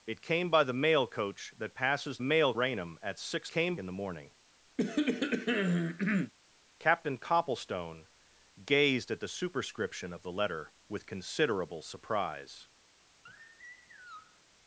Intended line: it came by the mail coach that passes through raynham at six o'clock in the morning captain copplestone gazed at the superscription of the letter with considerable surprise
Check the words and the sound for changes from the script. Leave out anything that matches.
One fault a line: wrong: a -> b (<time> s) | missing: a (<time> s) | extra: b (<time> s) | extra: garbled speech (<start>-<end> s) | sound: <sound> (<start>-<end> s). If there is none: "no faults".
wrong: through -> mail (2.2 s)
wrong: o'clock -> came (3.5 s)
sound: cough (4.8-6.3 s)
sound: sigh (13.3-14.4 s)